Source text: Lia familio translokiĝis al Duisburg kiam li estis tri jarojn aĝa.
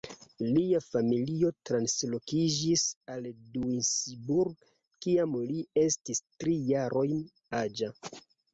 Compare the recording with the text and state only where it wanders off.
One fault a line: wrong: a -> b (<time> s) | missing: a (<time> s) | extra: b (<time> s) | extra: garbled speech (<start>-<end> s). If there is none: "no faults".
no faults